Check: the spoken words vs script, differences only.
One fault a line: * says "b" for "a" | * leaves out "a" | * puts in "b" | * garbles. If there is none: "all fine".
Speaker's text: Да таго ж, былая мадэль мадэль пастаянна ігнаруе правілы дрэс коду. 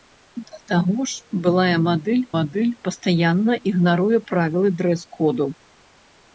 all fine